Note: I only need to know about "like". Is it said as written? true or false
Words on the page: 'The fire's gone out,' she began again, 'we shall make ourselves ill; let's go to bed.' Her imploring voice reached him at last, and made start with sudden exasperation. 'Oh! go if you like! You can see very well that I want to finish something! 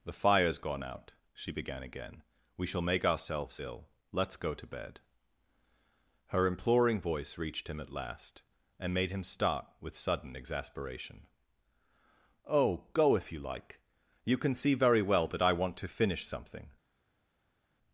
true